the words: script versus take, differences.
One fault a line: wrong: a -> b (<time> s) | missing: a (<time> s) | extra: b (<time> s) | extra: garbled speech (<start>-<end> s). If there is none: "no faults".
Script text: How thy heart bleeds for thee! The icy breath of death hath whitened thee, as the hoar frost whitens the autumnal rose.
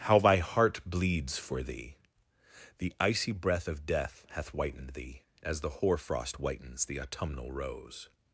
no faults